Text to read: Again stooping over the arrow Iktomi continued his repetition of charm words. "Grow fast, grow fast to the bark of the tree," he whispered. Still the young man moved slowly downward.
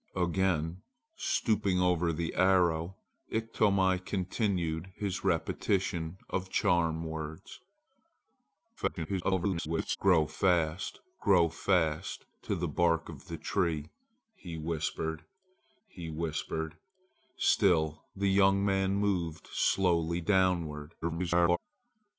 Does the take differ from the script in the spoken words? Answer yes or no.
yes